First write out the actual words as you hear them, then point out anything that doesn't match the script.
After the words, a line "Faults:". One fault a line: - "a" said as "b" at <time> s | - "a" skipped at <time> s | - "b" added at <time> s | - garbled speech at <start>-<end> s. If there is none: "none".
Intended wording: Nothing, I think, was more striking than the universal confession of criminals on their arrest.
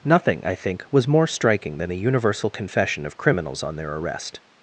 Nothing, I think, was more striking than the universal confession of criminals on their arrest.
Faults:
none